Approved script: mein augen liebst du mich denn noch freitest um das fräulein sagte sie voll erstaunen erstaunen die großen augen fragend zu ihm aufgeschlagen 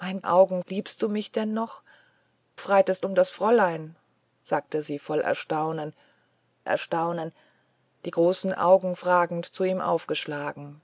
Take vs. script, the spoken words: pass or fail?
pass